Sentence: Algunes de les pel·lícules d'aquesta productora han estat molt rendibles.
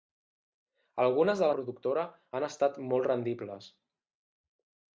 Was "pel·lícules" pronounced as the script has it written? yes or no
no